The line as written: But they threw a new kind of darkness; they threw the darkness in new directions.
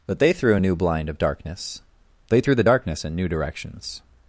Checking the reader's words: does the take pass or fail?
fail